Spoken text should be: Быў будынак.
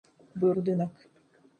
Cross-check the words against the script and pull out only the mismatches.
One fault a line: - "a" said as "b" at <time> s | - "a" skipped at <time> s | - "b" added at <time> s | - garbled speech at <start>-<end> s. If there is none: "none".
none